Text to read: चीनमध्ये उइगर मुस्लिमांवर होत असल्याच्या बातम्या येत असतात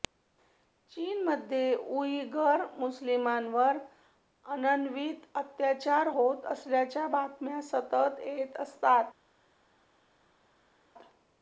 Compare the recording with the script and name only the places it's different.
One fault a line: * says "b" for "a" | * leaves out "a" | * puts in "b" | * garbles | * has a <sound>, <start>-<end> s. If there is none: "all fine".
* puts in "अनन्वित अत्याचार"
* puts in "सतत"